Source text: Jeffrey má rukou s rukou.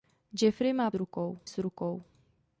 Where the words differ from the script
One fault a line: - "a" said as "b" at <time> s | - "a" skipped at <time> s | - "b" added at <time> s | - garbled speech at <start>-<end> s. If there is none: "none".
none